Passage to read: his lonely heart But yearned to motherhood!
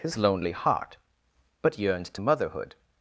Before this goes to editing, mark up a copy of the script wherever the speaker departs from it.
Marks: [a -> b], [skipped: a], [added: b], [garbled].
his lonely heart But yearned to motherhood!